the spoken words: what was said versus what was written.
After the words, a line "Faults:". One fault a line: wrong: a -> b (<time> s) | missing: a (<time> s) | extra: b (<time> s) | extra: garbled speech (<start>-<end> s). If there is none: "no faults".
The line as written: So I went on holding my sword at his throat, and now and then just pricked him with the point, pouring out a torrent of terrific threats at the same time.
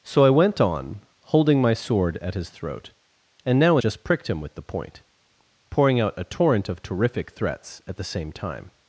So I went on holding my sword at his throat, and now just pricked him with the point, pouring out a torrent of terrific threats at the same time.
Faults:
missing: and then (3.8 s)